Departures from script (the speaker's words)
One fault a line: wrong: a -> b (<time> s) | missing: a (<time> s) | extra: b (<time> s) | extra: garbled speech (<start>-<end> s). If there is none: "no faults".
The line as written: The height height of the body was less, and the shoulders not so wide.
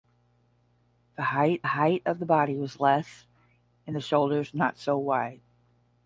no faults